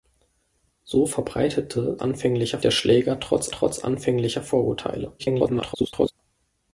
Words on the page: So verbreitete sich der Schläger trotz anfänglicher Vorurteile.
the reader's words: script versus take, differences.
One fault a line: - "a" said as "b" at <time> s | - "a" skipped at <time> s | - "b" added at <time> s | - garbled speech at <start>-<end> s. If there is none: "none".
- "sich" said as "anfänglicher" at 2.0 s
- "trotz" added at 3.5 s
- garbled speech at 5.2-6.1 s